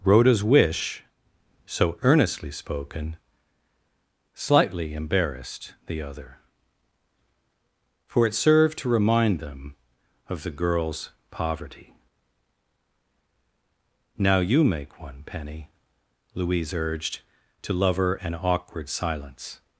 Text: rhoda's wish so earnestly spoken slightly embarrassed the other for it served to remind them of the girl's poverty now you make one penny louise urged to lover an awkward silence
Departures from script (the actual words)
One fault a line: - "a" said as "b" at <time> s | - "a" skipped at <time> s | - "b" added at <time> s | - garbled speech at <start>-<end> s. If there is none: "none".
none